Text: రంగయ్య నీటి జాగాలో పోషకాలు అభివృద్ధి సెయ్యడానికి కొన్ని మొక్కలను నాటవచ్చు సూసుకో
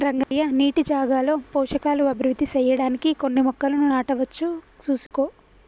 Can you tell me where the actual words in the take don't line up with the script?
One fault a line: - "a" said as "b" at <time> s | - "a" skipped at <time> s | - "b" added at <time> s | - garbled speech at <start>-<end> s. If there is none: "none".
none